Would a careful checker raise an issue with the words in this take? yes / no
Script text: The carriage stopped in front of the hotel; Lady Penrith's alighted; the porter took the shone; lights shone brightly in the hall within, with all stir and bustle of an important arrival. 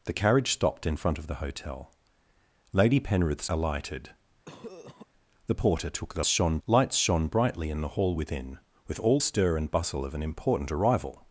no